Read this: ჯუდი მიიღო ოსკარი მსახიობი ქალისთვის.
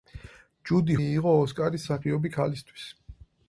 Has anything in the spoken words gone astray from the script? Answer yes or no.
no